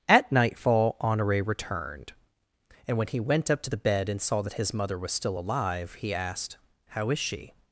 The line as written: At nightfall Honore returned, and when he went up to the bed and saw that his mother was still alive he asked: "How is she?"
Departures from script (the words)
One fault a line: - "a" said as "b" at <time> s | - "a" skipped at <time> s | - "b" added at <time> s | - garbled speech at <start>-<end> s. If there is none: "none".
none